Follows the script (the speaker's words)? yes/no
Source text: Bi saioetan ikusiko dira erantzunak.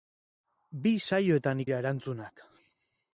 no